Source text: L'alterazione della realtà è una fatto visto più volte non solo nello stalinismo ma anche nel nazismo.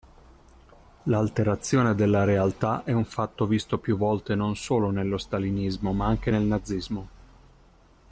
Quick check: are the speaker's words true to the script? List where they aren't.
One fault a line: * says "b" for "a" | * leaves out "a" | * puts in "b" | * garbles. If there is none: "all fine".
* says "un" for "una"